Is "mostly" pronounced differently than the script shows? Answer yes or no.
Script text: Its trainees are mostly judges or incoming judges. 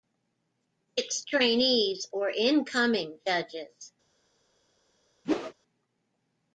yes